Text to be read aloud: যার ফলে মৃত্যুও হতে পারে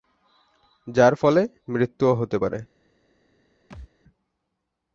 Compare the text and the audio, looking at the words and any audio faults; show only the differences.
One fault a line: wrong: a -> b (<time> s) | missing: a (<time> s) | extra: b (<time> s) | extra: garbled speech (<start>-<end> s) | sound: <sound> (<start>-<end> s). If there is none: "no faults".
sound: thud (3.7-3.9 s)